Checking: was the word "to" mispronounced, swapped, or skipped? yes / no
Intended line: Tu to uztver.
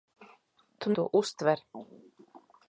no